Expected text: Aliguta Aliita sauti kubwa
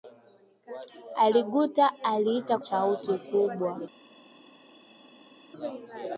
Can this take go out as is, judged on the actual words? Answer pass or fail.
pass